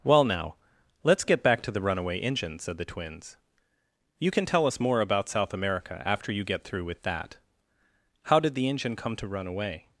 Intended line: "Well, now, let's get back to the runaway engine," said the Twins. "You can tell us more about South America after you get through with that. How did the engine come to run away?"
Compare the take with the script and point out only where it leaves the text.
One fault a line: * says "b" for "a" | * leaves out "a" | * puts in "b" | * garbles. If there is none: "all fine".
all fine